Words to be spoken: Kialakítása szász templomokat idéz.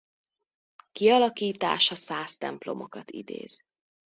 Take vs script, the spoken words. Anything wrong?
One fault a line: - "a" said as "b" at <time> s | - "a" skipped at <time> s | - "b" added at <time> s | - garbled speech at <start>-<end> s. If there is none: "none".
none